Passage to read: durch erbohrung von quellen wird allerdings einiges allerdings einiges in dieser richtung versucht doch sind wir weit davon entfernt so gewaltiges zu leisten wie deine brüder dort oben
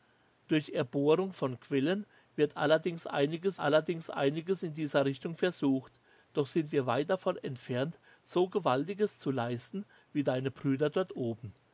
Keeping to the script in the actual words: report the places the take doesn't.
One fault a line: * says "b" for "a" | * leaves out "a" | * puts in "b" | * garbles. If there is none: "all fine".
all fine